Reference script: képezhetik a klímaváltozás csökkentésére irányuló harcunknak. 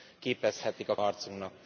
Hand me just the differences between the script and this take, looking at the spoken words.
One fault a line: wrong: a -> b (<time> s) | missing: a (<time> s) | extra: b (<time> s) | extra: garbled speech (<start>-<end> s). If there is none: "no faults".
missing: klímaváltozás csökkentésére irányuló (1.0 s)